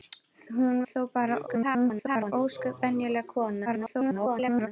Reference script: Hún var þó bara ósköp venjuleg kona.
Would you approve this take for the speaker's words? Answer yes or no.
no